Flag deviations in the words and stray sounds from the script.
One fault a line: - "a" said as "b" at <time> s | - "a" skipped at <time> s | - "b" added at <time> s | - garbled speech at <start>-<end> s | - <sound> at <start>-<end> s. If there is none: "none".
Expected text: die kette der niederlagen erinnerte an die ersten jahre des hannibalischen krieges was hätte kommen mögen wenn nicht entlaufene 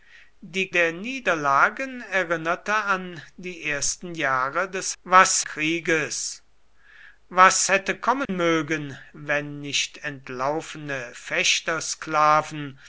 - "kette" skipped at 0.7 s
- "hannibalischen" said as "was" at 5.0 s
- dropout at 8.3-8.3 s